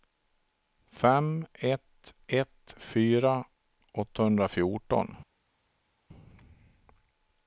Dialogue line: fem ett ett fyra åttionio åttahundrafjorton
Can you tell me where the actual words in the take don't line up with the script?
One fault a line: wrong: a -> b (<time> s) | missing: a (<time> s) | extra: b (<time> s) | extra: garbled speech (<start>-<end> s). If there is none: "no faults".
missing: åttionio (3.5 s)